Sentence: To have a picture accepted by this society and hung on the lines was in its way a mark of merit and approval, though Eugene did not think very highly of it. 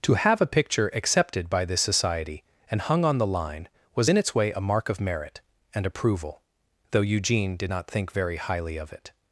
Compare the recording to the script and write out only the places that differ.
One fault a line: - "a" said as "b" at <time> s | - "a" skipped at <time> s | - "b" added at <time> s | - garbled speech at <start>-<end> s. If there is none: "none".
- "lines" said as "line" at 3.3 s